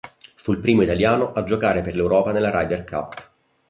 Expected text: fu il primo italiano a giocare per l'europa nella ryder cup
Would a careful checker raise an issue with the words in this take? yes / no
no